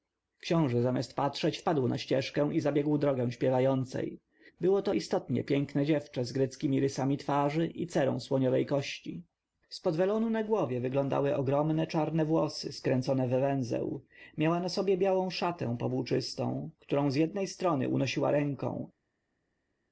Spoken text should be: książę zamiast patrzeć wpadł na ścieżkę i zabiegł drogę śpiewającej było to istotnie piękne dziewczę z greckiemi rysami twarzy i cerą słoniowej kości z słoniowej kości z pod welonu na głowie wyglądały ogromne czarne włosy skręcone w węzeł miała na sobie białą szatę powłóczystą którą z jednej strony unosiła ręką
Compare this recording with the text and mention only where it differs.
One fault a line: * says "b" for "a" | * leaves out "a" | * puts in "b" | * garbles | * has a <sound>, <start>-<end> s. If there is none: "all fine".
* leaves out "słoniowej kości z"